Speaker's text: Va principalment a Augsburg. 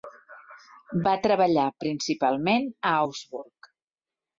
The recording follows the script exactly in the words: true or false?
false